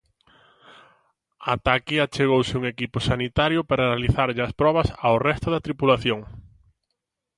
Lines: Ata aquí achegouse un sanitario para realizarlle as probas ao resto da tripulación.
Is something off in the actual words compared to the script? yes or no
yes